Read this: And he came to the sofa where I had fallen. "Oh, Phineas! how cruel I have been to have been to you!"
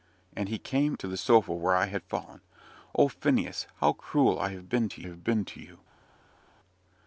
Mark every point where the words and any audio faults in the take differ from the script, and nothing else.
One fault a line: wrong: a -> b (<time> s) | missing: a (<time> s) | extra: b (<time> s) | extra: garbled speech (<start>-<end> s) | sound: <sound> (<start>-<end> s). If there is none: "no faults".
no faults